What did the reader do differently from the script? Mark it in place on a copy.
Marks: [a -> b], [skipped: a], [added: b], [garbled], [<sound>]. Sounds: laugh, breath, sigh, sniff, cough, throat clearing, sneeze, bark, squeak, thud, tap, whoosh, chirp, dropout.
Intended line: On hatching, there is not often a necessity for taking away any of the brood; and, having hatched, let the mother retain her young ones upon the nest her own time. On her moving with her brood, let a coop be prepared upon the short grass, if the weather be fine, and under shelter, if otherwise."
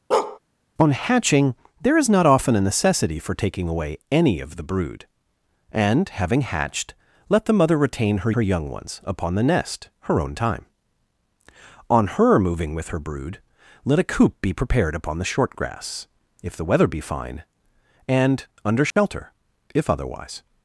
[bark] On hatching, there is not often a necessity for taking away any of the brood; and, having hatched, let the mother retain her [added: her] young ones upon the nest her own time. On her moving with her brood, let a coop be prepared upon the short grass, if the weather be fine, and under shelter, [dropout] if otherwise."